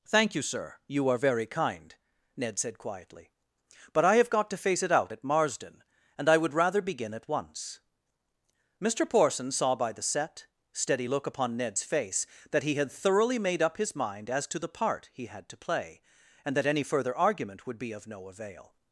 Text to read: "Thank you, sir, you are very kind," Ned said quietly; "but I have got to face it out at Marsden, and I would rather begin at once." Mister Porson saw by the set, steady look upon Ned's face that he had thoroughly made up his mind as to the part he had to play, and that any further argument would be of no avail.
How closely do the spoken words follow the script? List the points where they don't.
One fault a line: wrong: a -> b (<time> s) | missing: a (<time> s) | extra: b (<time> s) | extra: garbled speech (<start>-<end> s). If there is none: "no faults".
no faults